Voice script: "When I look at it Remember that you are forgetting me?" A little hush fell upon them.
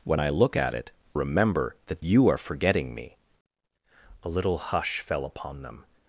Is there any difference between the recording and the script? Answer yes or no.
no